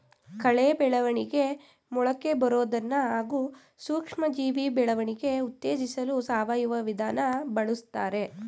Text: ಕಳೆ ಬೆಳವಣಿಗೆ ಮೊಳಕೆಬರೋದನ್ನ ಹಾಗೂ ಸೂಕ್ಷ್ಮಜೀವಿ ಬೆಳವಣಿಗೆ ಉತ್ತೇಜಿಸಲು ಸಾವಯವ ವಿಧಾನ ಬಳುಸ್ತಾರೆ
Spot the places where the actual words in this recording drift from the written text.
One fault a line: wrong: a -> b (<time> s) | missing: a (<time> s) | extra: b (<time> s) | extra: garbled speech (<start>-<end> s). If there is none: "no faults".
no faults